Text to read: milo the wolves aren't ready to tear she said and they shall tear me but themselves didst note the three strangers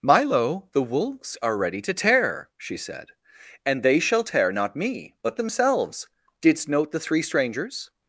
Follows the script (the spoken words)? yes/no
no